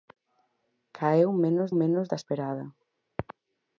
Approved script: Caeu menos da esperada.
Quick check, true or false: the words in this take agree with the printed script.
false